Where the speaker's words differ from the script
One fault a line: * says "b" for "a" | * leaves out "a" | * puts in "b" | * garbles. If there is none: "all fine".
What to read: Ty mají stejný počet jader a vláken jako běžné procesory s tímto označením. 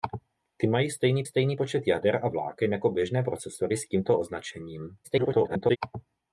* puts in "stejný"
* garbles